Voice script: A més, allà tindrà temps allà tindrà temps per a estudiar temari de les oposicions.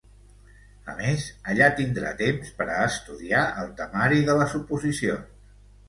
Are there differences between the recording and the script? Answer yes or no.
yes